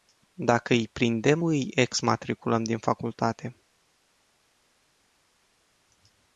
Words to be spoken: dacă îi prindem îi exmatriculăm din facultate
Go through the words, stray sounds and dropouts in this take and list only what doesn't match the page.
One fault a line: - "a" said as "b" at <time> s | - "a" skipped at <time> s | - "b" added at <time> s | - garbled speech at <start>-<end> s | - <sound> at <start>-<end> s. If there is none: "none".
none